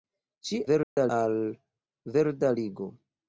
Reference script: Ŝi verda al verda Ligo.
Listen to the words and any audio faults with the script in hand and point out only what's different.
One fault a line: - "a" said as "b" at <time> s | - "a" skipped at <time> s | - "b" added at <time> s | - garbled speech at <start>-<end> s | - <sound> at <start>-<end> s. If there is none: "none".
- dropout at 0.8-1.0 s